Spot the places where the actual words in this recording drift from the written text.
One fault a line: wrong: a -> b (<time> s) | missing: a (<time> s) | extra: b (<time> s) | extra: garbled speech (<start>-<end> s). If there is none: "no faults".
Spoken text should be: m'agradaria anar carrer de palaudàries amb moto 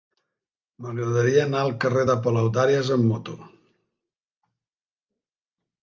extra: al (1.6 s)